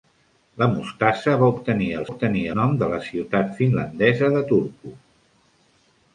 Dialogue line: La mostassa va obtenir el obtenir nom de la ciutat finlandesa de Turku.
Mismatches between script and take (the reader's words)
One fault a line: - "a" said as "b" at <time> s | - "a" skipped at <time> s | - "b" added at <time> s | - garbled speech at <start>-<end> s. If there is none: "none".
none